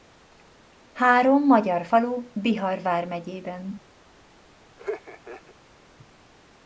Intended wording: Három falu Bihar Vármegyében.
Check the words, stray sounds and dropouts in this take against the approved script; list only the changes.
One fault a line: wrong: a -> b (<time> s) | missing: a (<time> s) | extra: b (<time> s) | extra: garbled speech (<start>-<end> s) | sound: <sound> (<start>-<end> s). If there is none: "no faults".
extra: magyar (1.4 s)
sound: laugh (4.8-5.5 s)